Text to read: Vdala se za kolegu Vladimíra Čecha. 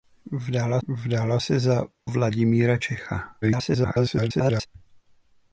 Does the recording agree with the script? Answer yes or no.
no